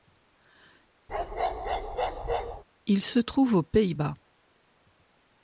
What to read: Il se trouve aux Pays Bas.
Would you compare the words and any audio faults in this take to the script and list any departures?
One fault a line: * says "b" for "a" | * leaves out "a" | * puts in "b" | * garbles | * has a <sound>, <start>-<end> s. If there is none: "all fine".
* has a bark, 1.1-2.6 s